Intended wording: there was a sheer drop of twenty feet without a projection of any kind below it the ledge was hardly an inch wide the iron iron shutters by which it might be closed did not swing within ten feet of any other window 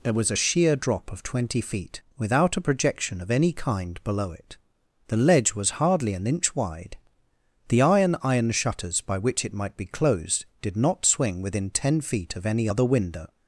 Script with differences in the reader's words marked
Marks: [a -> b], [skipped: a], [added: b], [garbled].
there was a sheer drop of twenty feet without a projection of any kind below it the ledge was hardly an inch wide the iron iron shutters by which it might be closed did not swing within ten feet of any other window